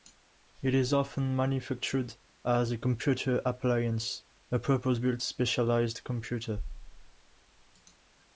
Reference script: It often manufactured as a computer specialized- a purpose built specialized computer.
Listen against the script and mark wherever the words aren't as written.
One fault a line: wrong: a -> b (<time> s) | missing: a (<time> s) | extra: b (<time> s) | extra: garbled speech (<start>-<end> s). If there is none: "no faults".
extra: is (0.7 s)
wrong: specialized -> appliance (3.5 s)